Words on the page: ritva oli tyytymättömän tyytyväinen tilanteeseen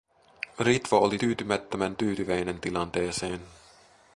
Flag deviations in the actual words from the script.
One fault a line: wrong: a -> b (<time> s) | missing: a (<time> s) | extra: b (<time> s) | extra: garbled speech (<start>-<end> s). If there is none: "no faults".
no faults